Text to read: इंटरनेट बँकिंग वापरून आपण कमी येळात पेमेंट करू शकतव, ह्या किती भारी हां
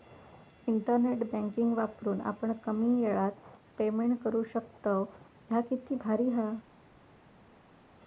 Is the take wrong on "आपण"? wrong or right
right